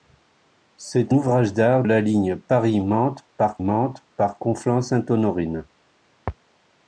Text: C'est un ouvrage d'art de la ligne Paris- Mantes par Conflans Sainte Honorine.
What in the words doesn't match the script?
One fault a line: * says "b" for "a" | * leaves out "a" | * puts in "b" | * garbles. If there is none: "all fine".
* leaves out "un"
* leaves out "de"
* puts in "Mantes par"